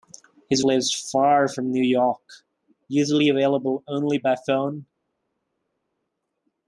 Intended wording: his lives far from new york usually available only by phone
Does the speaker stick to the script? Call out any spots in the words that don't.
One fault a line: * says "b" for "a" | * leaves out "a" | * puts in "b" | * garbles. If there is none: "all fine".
all fine